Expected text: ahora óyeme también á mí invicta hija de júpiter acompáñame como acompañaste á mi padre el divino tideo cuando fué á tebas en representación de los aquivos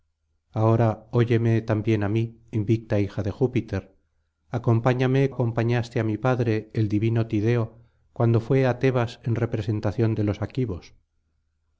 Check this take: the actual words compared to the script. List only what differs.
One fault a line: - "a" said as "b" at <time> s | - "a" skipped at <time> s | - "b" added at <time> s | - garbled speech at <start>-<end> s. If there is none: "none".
- "como" skipped at 5.2 s